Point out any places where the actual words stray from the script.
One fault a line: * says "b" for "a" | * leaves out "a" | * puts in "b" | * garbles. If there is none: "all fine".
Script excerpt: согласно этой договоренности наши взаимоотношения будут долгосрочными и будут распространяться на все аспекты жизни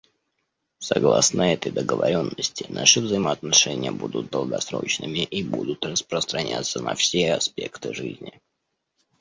all fine